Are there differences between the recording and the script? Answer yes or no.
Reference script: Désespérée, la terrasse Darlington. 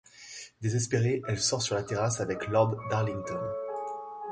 yes